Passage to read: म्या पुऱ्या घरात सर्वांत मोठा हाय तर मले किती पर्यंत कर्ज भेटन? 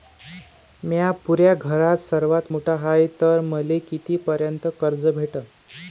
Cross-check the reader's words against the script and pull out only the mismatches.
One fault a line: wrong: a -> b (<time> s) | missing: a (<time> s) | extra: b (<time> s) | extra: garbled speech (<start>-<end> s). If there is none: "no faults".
no faults